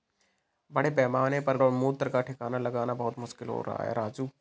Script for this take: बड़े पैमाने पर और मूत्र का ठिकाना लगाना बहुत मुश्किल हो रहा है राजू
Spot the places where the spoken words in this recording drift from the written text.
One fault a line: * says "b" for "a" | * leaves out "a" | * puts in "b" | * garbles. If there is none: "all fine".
all fine